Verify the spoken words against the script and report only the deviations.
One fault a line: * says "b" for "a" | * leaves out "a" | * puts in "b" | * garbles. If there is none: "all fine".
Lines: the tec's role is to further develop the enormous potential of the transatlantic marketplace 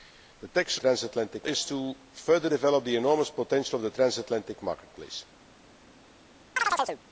* says "transatlantic" for "role"